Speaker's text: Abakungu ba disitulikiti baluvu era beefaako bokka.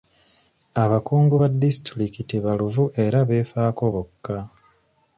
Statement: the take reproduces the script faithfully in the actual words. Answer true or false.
true